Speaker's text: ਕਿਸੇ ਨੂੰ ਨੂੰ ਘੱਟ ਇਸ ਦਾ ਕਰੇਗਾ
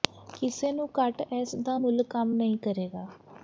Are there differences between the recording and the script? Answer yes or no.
yes